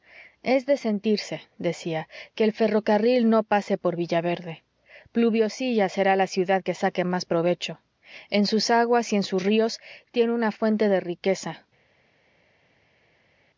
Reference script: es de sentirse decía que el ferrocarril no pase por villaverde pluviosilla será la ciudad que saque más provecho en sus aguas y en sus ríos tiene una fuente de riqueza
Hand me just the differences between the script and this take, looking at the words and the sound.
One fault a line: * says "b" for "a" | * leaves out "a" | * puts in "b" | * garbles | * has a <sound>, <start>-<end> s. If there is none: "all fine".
all fine